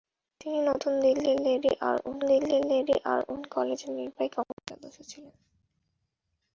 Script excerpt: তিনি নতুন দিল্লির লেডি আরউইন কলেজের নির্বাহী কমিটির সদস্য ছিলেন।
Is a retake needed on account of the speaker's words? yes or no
yes